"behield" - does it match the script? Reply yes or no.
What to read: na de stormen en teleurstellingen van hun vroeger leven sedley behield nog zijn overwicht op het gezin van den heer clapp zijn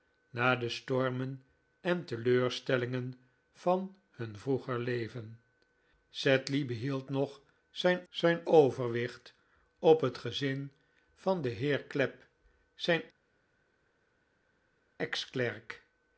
yes